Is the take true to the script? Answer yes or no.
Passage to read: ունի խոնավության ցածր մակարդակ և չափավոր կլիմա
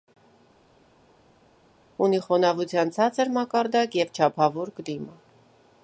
yes